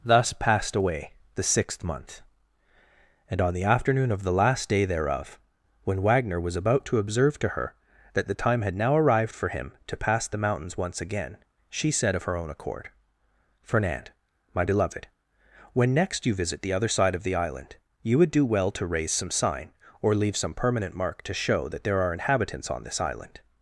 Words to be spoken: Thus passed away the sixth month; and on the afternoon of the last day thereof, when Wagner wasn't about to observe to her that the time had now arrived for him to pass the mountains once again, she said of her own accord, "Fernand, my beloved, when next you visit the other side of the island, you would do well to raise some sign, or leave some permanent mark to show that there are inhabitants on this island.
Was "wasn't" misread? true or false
true